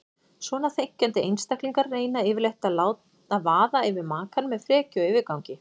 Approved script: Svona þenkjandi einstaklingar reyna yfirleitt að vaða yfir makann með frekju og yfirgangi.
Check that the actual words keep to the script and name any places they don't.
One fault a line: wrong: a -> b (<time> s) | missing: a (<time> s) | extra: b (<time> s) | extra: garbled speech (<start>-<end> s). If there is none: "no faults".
no faults